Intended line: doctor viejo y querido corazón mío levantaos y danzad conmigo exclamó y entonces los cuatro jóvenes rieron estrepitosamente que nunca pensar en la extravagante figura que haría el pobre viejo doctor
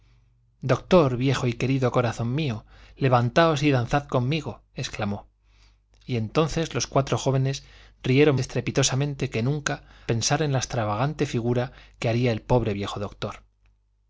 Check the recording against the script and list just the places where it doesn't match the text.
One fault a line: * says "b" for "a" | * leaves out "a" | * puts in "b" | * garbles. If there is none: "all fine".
all fine